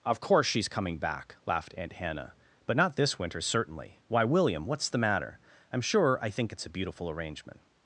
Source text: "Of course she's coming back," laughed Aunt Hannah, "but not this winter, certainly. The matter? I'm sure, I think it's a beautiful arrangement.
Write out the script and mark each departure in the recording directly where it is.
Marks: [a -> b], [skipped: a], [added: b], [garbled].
"Of course she's coming back," laughed Aunt Hannah, "but not this winter, certainly. [added: Why William what's] The matter? I'm sure, I think it's a beautiful arrangement.